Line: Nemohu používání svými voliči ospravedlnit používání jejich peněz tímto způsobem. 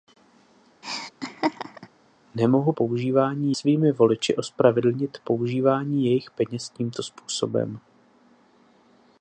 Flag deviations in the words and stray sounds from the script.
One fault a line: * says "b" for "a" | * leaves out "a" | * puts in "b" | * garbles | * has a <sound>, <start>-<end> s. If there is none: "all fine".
* has a laugh, 0.8-1.9 s